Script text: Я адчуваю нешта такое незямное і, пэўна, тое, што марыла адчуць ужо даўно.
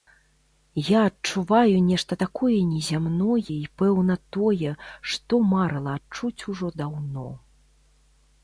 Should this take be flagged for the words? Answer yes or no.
no